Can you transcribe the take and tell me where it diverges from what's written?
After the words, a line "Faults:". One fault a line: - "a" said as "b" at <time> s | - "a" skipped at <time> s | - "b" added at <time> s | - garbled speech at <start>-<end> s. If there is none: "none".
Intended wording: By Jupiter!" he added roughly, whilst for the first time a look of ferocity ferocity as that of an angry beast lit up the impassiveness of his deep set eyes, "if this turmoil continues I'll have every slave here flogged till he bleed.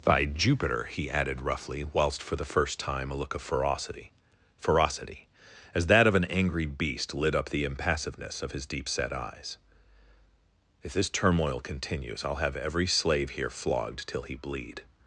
By Jupiter!" he added roughly, whilst for the first time a look of ferocity ferocity as that of an angry beast lit up the impassiveness of his deep set eyes, "if this turmoil continues I'll have every slave here flogged till he bleed.
Faults:
none